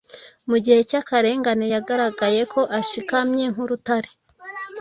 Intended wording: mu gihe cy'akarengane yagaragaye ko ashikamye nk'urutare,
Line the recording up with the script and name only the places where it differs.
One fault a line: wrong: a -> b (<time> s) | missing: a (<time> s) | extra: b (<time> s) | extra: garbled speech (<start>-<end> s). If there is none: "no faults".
no faults